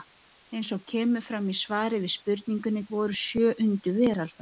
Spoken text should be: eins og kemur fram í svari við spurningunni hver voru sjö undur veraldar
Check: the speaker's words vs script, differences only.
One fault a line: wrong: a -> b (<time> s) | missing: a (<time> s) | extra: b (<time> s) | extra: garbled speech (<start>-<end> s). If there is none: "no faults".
missing: hver (2.9 s)